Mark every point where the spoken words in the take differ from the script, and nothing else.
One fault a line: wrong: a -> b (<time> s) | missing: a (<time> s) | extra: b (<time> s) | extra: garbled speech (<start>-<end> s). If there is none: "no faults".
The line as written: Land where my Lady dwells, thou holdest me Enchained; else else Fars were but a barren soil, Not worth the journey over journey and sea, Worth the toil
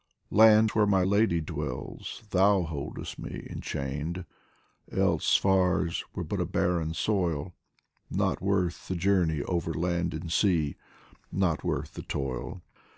missing: else (5.3 s)
wrong: journey -> land (9.7 s)
extra: Not (11.3 s)